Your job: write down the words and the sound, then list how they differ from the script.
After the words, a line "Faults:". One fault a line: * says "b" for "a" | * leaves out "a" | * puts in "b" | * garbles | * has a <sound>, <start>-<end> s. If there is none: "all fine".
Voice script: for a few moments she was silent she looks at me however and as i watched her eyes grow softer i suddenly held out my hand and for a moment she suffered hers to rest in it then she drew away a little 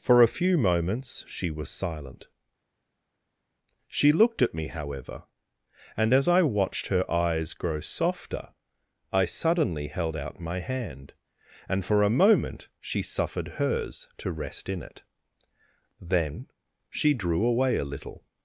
for a few moments she was silent she looked at me however and as i watched her eyes grow softer i suddenly held out my hand and for a moment she suffered hers to rest in it then she drew away a little
Faults:
* says "looked" for "looks"